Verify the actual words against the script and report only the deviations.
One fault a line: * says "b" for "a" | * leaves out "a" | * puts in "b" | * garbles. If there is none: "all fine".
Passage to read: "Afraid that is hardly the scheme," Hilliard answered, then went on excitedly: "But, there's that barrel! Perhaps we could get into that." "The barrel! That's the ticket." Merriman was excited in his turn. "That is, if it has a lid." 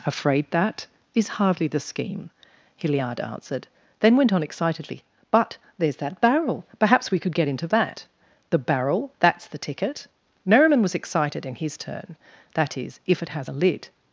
all fine